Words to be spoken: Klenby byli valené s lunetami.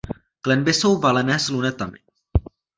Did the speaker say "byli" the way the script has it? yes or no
no